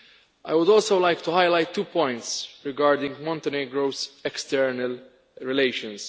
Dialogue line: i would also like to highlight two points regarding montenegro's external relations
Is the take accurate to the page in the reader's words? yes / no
yes